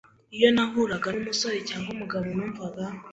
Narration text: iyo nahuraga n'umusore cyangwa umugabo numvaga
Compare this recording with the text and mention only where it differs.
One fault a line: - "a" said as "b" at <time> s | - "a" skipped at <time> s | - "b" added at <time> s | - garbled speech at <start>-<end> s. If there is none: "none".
none